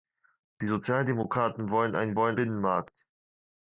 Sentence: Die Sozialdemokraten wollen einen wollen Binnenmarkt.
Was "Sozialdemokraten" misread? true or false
false